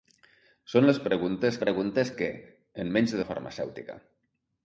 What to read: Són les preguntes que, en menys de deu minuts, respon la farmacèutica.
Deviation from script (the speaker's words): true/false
true